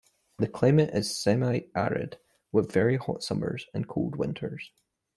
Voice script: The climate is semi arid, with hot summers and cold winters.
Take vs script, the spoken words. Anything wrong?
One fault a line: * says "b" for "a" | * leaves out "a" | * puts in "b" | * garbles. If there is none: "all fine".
* puts in "very"